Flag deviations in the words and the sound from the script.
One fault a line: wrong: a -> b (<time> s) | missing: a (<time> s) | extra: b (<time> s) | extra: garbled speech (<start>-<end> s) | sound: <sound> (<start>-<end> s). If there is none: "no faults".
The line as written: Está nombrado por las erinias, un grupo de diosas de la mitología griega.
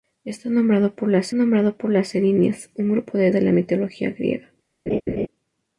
extra: nombrado por las (1.3 s)
missing: diosas (3.3 s)
sound: laugh (4.9-5.3 s)